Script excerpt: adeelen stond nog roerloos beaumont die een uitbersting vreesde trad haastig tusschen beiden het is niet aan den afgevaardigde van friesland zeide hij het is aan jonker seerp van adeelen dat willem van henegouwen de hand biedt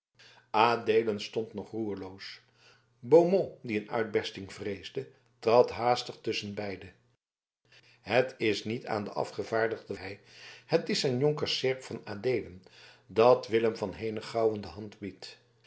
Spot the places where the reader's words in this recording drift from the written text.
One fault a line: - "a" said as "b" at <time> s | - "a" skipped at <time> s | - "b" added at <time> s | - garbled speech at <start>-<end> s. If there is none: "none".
- "van friesland zeide" skipped at 9.9 s